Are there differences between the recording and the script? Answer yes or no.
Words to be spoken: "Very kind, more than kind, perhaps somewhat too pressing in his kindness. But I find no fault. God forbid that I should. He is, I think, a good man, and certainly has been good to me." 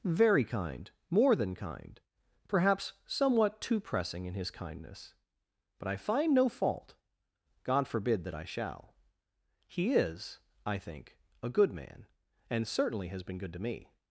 yes